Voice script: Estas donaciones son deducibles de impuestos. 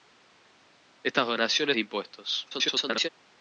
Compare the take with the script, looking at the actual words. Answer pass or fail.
fail